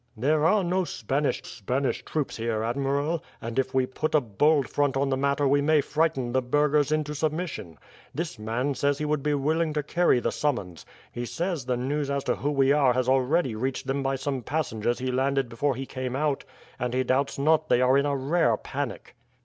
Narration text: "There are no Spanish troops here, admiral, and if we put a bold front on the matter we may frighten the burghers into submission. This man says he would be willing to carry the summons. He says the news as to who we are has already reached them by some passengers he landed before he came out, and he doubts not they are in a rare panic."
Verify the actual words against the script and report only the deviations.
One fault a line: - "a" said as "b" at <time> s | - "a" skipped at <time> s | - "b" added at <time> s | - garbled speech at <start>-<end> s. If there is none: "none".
- "Spanish" added at 1.4 s